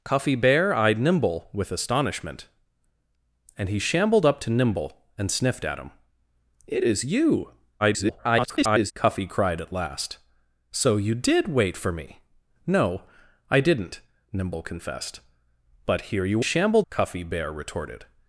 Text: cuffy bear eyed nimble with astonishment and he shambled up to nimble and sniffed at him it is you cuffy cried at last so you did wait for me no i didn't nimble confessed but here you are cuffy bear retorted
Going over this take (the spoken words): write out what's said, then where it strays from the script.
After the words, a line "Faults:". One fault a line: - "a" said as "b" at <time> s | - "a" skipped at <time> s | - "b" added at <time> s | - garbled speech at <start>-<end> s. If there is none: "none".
cuffy bear eyed nimble with astonishment and he shambled up to nimble and sniffed at him it is you [garbled] cuffy cried at last so you did wait for me no i didn't nimble confessed but here you shambled cuffy bear retorted
Faults:
- garbled speech at 7.8-8.9 s
- "are" said as "shambled" at 16.4 s